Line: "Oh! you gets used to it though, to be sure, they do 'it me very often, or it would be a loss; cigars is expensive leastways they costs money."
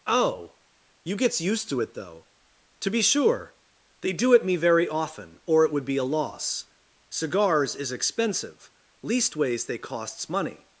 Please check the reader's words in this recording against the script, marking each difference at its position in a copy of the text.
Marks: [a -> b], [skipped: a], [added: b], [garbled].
"Oh! you gets used to it though, to be sure, they do 'it me very often, or it would be a loss; cigars is expensive leastways they costs money."